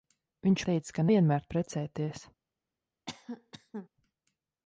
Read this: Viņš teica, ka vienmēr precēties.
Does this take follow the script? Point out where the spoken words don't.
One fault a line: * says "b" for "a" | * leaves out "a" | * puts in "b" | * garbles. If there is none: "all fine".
all fine